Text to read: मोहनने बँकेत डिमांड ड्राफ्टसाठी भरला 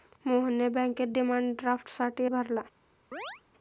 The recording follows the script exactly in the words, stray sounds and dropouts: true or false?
false